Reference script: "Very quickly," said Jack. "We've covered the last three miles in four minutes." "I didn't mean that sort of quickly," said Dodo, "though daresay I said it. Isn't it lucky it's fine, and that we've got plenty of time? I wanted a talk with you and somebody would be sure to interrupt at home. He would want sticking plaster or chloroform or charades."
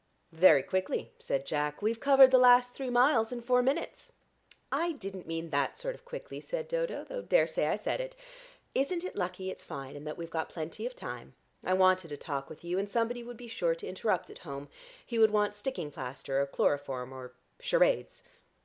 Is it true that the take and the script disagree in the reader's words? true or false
false